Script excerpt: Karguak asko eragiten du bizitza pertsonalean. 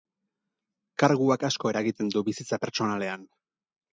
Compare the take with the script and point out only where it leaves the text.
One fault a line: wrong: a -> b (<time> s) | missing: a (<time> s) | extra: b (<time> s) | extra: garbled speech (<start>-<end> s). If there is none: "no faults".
no faults